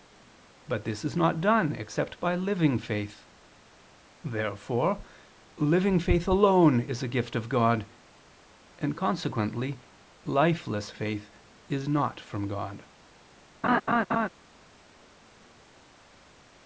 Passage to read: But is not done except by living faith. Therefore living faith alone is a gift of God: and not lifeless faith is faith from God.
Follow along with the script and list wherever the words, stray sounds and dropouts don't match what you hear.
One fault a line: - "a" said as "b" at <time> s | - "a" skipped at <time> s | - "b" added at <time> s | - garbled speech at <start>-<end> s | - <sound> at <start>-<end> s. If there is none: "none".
- "this" added at 0.8 s
- "not" said as "consequently" at 9.0 s
- "faith" said as "not" at 11.9 s
- laugh at 13.6-14.3 s